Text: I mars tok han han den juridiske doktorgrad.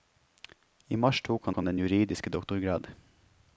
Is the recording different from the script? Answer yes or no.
no